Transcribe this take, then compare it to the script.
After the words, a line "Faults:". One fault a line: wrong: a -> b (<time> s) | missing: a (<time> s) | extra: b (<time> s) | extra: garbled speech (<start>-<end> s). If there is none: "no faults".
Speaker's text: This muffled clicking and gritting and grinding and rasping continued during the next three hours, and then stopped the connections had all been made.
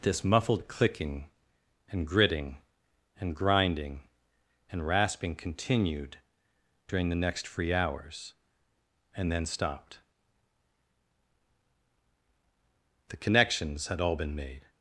This muffled clicking and gritting and grinding and rasping continued during the next free hours, and then stopped the connections had all been made.
Faults:
wrong: three -> free (7.5 s)